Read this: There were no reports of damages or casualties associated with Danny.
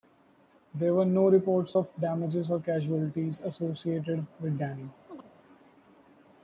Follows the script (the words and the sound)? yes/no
no